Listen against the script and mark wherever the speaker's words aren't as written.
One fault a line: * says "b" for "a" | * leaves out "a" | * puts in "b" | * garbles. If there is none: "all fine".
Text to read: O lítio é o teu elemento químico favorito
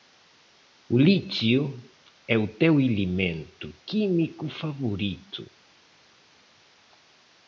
all fine